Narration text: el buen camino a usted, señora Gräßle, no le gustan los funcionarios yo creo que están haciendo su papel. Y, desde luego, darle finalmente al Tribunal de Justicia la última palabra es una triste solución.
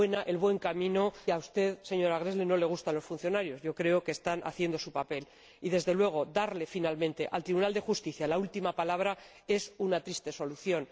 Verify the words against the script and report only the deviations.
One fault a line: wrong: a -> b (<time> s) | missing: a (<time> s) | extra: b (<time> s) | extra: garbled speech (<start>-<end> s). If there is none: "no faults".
no faults